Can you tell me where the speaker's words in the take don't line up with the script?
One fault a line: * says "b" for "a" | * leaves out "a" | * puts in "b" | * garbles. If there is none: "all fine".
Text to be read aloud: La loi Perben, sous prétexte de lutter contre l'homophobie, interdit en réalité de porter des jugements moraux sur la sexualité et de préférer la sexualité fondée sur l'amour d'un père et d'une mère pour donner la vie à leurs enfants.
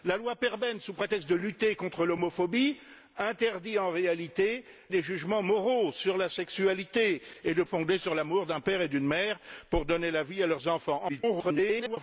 * leaves out "de porter"
* leaves out "préférer la sexualité"
* garbles